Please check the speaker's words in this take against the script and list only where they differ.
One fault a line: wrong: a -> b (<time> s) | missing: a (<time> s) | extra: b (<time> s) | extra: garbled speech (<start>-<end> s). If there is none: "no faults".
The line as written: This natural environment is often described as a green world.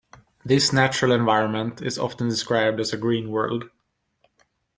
no faults